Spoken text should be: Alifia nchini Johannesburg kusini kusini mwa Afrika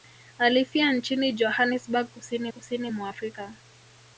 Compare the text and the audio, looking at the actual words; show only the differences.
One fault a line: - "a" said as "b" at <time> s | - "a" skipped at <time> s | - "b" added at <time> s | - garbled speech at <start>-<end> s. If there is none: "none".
none